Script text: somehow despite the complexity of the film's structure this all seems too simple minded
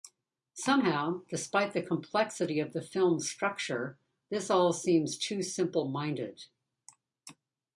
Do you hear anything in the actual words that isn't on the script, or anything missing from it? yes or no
no